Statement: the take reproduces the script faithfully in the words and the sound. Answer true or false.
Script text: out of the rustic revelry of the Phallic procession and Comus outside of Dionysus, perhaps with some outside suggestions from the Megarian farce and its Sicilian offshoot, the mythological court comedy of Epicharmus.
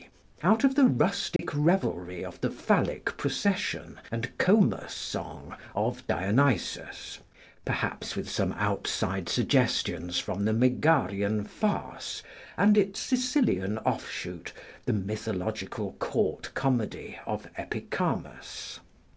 false